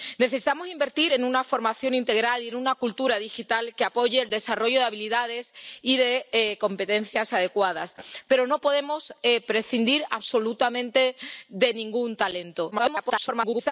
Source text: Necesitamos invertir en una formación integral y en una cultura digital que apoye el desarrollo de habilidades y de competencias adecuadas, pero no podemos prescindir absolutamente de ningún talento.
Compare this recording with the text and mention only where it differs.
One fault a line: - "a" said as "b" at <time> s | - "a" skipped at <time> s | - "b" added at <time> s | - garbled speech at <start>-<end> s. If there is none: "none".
- garbled speech at 12.7-13.7 s